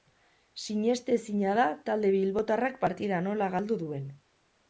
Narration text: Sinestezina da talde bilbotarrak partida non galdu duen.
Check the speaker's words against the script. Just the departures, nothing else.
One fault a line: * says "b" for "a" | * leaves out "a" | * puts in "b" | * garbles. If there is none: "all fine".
* says "nola" for "non"